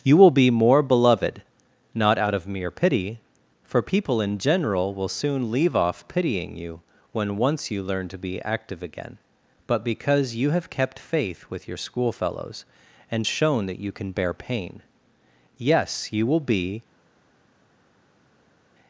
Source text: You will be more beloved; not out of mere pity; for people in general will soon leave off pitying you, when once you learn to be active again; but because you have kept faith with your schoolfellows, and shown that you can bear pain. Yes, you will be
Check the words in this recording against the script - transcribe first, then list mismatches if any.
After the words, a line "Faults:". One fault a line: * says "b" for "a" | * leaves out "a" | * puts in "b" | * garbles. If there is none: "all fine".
You will be more beloved; not out of mere pity; for people in general will soon leave off pitying you, when once you learn to be active again; but because you have kept faith with your schoolfellows, and shown that you can bear pain. Yes, you will be
Faults:
all fine